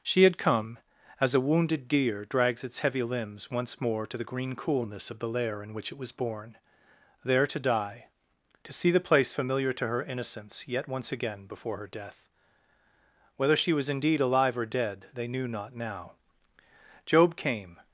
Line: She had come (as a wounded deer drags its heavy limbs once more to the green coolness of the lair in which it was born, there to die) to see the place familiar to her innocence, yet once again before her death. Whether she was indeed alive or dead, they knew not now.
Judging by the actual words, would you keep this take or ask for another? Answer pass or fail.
fail